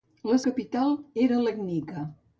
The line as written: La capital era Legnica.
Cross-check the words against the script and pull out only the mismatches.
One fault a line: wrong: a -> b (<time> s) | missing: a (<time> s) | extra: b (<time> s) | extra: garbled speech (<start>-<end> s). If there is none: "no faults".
no faults